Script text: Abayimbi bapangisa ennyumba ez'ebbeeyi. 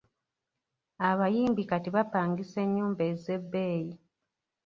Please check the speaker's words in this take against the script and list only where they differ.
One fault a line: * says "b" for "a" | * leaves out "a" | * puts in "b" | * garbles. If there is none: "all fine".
* puts in "kati"